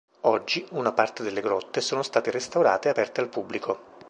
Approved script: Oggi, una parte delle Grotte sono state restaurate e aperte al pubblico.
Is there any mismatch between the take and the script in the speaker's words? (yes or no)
no